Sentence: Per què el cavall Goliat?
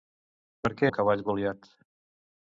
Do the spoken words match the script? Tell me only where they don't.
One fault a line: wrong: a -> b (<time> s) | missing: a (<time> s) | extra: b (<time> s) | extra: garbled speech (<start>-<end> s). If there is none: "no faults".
no faults